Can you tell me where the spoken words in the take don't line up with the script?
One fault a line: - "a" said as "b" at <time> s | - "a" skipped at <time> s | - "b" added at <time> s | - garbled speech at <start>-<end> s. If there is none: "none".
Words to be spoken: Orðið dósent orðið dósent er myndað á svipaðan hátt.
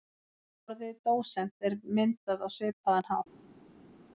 - "orðið dósent" skipped at 1.7 s